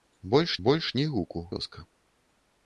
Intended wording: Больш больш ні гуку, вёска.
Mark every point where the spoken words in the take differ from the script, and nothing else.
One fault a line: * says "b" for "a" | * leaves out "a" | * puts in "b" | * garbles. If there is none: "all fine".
all fine